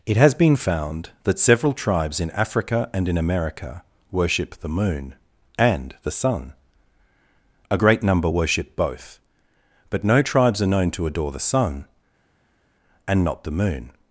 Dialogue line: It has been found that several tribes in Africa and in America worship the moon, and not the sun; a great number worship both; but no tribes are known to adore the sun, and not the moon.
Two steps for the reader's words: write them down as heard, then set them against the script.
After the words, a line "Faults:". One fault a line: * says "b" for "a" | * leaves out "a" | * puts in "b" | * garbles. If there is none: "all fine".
It has been found that several tribes in Africa and in America worship the moon, and the sun; a great number worship both; but no tribes are known to adore the sun, and not the moon.
Faults:
* leaves out "not"